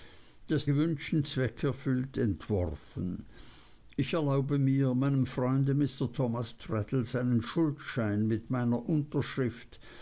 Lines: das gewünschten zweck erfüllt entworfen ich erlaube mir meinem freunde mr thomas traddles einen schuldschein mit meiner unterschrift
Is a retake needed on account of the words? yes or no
no